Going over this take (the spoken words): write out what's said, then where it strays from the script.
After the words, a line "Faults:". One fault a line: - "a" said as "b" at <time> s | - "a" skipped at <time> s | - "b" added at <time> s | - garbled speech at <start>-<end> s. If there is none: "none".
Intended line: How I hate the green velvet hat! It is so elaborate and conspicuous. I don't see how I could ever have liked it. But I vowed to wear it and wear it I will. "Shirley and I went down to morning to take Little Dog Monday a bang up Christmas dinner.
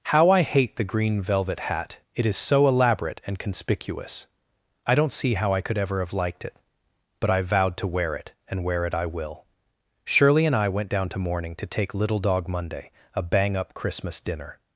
How I hate the green velvet hat! It is so elaborate and conspicuous. I don't see how I could ever have liked it. But I vowed to wear it and wear it I will. "Shirley and I went down to morning to take Little Dog Monday a bang up Christmas dinner.
Faults:
none